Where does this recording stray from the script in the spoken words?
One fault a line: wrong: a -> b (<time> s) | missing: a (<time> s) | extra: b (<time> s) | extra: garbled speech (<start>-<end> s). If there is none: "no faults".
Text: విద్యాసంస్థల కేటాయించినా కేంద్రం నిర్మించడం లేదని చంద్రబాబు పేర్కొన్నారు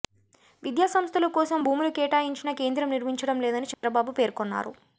extra: కోసం భూములు (1.4 s)